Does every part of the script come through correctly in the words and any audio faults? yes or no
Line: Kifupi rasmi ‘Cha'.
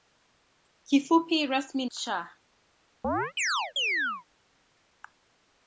no